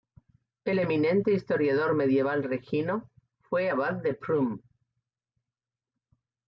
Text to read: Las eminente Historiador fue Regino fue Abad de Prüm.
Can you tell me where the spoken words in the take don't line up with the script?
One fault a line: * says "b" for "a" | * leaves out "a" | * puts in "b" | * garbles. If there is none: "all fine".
* says "El" for "Las"
* says "medieval" for "fue"